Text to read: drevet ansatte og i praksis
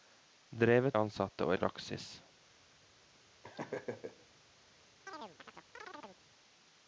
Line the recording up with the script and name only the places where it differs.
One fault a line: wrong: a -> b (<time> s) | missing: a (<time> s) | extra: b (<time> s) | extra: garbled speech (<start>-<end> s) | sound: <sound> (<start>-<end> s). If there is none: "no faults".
sound: laugh (3.4-4.3 s)
sound: chirp (5.1-6.2 s)